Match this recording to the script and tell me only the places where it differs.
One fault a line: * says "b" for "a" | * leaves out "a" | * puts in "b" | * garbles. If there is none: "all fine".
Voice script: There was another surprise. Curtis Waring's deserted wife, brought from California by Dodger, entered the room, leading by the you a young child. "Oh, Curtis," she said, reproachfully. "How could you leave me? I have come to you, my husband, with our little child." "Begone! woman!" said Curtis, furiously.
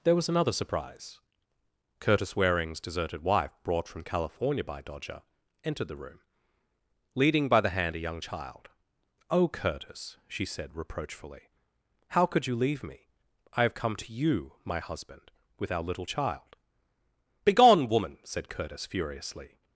* says "hand" for "you"